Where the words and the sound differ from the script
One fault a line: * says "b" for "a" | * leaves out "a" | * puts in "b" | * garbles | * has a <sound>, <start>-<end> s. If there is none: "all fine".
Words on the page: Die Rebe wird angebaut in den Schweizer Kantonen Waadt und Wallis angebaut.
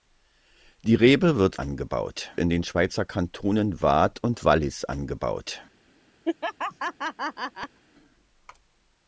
* has a laugh, 6.2-7.8 s